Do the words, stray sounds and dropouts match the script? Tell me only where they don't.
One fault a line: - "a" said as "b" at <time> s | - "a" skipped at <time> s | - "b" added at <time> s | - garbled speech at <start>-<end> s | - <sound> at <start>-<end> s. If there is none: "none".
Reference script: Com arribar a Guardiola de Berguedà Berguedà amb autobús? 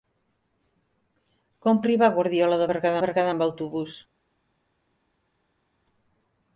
none